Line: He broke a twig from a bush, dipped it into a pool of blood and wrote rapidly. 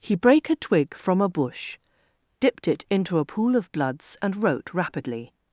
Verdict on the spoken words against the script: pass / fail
fail